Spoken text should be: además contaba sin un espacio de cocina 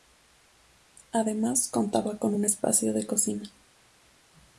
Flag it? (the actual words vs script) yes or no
yes